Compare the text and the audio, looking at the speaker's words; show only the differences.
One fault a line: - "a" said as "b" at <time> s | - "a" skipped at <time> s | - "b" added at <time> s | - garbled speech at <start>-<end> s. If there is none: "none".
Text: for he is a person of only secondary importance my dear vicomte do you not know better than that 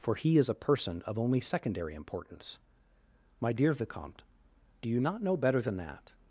none